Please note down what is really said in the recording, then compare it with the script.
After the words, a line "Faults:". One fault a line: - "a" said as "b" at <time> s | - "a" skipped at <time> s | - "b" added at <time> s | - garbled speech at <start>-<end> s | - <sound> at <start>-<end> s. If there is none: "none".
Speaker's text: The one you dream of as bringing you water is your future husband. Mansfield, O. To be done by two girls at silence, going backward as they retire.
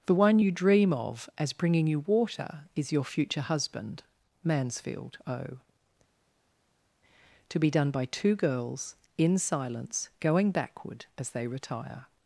The one you dream of as bringing you water is your future husband. Mansfield, O. To be done by two girls in silence, going backward as they retire.
Faults:
- "at" said as "in" at 9.2 s